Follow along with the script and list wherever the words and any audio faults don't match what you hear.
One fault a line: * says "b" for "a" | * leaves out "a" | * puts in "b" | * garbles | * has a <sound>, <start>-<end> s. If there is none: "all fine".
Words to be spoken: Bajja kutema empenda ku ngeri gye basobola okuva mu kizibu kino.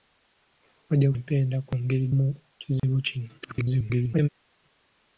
* leaves out "kutema"
* leaves out "gye basobola okuva"
* has a dropout, 2.8-2.8 s
* garbles